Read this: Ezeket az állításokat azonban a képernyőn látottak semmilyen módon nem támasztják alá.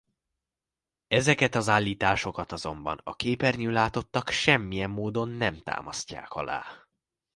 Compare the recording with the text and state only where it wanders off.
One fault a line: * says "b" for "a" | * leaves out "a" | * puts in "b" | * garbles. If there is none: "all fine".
all fine